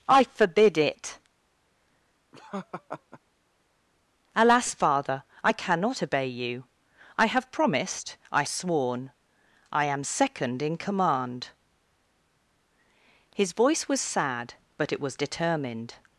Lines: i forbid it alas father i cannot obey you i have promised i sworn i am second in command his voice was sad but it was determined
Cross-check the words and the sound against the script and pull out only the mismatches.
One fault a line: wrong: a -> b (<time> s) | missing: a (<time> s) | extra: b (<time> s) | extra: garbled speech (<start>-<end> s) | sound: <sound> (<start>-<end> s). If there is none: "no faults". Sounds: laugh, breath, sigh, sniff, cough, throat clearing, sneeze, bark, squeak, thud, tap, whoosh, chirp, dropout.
sound: laugh (2.3-3.2 s)